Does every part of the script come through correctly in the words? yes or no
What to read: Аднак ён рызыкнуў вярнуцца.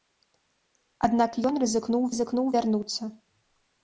no